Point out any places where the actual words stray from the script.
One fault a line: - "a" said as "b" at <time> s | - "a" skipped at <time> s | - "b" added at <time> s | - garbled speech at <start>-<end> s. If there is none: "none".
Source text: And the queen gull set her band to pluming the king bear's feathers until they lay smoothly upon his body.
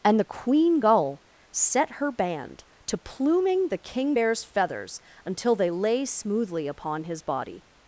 none